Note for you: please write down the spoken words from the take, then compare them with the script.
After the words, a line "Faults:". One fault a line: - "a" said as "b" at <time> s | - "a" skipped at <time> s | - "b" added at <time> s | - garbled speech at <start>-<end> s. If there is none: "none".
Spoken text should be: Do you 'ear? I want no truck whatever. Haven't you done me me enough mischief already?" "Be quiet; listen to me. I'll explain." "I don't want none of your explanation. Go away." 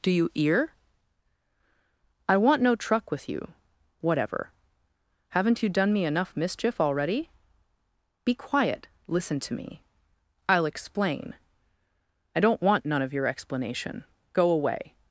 Do you 'ear? I want no truck with you whatever. Haven't you done me enough mischief already?" "Be quiet; listen to me. I'll explain." "I don't want none of your explanation. Go away."
Faults:
- "with you" added at 3.1 s
- "me" skipped at 6.0 s